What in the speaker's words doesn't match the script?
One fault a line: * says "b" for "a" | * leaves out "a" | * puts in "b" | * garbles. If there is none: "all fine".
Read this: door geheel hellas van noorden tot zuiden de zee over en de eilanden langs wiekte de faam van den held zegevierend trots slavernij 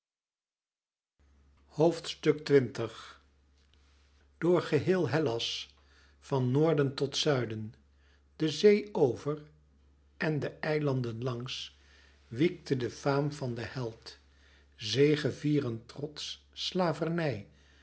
all fine